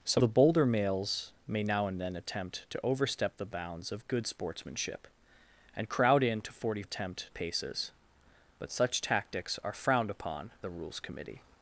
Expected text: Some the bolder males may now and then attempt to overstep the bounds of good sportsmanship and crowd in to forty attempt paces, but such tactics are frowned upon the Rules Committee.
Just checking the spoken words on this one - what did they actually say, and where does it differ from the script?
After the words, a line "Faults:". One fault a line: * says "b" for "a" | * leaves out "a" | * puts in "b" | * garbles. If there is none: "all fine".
Some the bolder males may now and then attempt to overstep the bounds of good sportsmanship and crowd in to forty attempt paces, but such tactics are frowned upon the Rules Committee.
Faults:
all fine